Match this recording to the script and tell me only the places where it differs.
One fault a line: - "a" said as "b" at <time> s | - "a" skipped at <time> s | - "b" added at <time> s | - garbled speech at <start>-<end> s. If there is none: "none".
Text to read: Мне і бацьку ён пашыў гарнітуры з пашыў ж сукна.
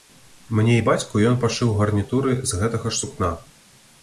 - "пашыў" said as "гэтага" at 2.6 s